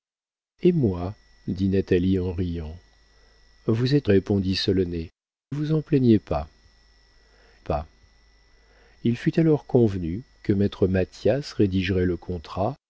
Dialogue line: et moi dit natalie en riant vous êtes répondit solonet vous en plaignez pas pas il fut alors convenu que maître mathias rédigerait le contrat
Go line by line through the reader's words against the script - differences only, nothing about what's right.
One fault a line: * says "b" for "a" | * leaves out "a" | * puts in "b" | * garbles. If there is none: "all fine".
all fine